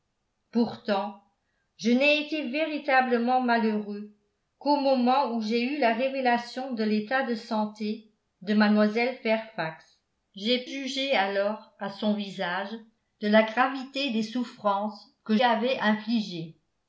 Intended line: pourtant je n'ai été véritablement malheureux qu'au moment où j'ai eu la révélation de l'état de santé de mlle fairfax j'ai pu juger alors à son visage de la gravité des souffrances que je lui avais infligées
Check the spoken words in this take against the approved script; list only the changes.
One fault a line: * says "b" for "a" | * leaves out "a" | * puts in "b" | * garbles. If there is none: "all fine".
* leaves out "pu"
* leaves out "je lui"